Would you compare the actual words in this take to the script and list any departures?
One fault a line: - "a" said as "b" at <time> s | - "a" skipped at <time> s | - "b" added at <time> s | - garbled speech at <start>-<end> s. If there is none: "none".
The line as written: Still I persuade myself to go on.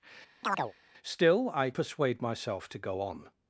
none